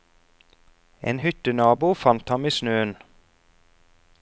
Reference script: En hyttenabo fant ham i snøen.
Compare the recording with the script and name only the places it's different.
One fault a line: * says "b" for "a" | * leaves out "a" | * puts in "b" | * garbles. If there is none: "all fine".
all fine